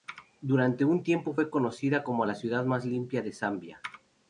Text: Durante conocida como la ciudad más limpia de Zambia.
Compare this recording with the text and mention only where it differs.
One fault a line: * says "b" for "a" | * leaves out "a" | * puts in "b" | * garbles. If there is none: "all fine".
* puts in "un tiempo fue"